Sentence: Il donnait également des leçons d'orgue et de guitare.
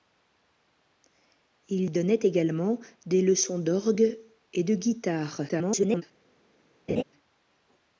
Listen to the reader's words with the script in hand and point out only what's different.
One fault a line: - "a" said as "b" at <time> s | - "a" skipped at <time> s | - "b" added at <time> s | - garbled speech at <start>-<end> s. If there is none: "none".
- garbled speech at 5.5-6.0 s